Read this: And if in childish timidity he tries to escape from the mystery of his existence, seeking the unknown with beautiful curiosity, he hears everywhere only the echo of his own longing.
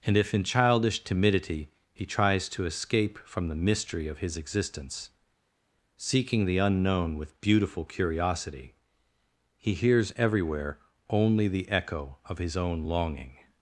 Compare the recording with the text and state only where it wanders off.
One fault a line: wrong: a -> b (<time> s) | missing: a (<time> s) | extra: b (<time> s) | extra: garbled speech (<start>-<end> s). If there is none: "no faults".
no faults